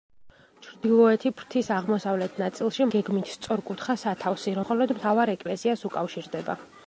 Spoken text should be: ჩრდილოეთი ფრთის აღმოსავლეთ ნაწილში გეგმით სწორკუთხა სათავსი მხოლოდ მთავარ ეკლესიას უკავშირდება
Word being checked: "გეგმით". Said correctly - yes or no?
yes